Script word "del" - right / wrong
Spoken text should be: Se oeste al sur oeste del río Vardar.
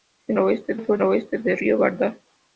right